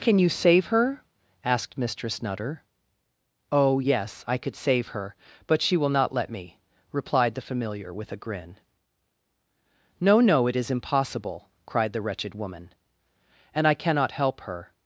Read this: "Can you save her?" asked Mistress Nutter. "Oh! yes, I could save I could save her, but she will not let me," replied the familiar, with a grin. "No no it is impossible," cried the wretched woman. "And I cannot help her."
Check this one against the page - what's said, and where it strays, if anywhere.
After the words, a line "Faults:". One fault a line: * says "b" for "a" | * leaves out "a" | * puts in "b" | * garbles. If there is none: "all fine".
"Can you save her?" asked Mistress Nutter. "Oh! yes, I could save her, but she will not let me," replied the familiar, with a grin. "No no it is impossible," cried the wretched woman. "And I cannot help her."
Faults:
* leaves out "I could save"